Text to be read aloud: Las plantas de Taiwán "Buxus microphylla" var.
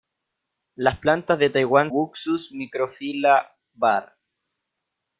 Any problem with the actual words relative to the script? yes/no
no